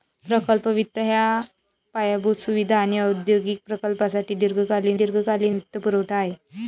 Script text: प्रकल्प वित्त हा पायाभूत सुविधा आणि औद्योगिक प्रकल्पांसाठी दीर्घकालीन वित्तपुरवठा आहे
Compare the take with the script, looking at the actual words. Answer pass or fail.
fail